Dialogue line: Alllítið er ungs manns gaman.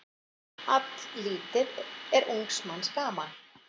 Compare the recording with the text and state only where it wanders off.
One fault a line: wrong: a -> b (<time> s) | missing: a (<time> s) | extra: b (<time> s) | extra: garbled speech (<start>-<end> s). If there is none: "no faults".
no faults